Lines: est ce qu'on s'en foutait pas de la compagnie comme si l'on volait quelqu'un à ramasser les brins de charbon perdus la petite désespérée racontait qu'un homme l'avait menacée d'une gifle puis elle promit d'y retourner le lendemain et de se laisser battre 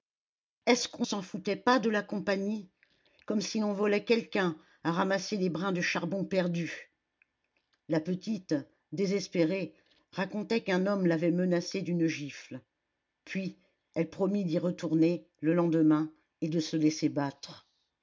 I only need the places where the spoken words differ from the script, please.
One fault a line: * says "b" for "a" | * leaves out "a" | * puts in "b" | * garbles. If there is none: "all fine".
all fine